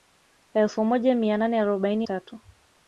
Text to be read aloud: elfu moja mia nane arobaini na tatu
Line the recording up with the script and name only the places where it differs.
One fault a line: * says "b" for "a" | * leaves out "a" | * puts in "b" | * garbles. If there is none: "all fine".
* leaves out "na"